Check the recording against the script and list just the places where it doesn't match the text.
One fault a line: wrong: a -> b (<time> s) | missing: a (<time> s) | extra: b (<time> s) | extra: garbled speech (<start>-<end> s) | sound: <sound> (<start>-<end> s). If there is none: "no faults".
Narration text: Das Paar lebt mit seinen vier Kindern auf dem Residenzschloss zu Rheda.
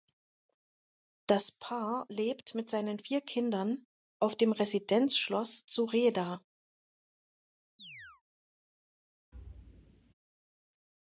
sound: chirp (7.8-8.2 s)
sound: thud (9.3-10.1 s)